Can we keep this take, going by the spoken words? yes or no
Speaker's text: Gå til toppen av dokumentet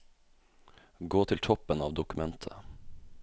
yes